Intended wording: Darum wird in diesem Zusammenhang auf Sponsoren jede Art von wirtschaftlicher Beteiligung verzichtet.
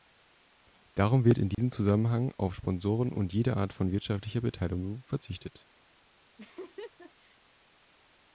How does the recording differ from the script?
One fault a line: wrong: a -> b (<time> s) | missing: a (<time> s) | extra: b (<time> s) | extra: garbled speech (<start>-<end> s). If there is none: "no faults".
extra: und (3.1 s)